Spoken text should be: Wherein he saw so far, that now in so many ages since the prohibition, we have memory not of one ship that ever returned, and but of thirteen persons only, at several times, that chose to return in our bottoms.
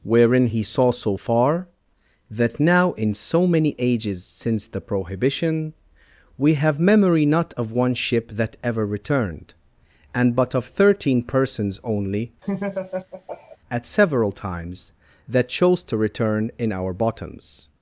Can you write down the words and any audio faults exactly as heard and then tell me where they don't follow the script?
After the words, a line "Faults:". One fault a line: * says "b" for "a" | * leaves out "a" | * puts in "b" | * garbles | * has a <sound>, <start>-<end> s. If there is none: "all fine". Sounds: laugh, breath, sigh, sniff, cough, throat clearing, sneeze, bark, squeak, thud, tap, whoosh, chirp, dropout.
Wherein he saw so far, that now in so many ages since the prohibition, we have memory not of one ship that ever returned, and but of thirteen persons only, at several times, that chose to return in our bottoms.
Faults:
* has a laugh, 12.4-13.6 s